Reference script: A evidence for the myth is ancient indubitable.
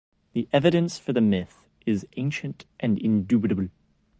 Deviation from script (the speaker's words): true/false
true